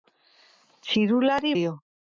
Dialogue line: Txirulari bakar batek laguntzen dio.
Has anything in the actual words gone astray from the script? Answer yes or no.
yes